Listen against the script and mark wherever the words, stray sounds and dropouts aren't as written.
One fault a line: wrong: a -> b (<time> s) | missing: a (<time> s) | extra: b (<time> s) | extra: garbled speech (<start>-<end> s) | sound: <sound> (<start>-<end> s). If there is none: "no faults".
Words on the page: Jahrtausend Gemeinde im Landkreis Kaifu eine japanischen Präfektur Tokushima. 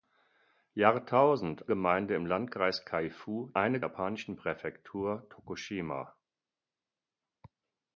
no faults